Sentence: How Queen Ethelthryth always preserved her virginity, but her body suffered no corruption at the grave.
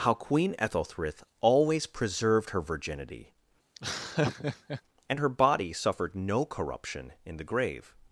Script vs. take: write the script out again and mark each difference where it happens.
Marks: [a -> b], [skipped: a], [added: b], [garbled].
How Queen Ethelthryth always preserved her virginity, [but -> and] her body suffered no corruption [at -> in] the grave.